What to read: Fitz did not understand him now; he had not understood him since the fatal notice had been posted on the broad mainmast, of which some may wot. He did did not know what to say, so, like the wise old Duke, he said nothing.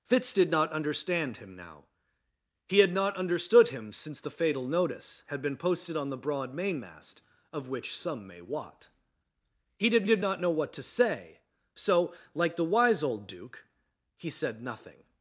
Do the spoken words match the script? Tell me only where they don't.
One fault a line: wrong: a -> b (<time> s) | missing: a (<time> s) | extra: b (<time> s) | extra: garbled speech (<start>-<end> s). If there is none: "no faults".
no faults